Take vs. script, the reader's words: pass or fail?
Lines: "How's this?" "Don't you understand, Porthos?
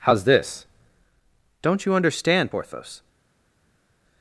pass